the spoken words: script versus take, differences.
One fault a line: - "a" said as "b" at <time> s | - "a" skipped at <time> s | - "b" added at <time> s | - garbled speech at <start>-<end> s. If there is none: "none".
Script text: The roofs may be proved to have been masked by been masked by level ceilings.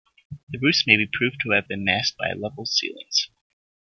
- "been masked by" skipped at 2.3 s